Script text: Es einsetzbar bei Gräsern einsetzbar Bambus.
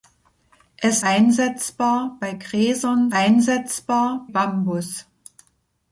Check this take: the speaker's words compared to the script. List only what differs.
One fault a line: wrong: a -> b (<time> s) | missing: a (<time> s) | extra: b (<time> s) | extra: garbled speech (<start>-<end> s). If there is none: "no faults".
no faults